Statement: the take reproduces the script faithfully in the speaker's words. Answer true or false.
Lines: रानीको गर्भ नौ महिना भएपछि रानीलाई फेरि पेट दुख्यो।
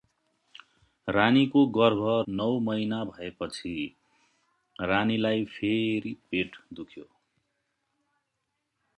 true